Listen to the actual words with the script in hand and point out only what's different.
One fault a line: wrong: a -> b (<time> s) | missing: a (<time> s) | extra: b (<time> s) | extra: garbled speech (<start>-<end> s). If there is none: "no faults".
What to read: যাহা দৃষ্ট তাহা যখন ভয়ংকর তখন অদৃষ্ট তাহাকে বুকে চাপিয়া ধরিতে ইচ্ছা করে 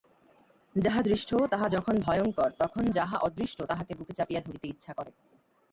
extra: যাহা (2.9 s)